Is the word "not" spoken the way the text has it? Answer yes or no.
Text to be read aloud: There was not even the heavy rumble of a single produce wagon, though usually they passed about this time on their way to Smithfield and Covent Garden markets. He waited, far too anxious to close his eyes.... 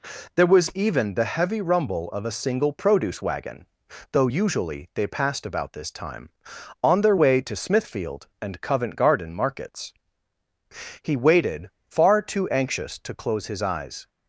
no